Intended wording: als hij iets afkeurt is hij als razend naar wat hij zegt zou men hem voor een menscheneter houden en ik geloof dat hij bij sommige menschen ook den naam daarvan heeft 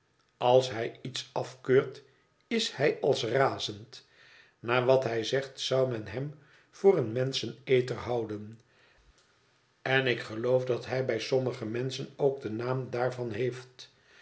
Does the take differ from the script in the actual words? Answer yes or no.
no